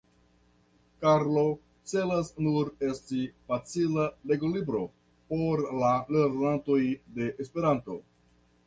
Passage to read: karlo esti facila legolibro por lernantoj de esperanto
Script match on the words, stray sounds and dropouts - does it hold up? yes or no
no